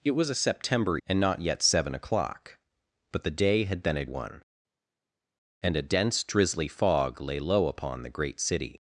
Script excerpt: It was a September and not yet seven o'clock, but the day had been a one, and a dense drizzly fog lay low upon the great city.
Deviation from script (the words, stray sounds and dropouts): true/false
false